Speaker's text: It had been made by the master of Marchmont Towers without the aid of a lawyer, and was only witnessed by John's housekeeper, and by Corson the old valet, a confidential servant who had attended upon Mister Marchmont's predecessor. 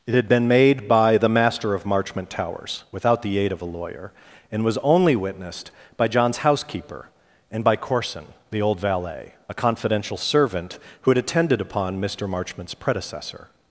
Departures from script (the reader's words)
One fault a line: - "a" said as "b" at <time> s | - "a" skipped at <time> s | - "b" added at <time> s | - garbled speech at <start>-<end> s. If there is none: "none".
none